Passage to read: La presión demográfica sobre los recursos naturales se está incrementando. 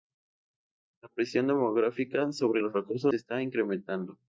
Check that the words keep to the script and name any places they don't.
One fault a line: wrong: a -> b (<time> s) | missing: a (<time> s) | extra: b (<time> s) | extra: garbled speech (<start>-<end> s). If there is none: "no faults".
missing: naturales (3.1 s)